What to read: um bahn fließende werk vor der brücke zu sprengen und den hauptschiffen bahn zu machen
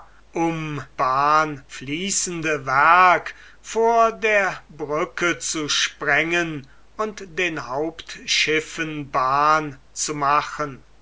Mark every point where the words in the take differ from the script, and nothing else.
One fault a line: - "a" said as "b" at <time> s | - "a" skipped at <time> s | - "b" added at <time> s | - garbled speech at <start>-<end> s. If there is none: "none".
none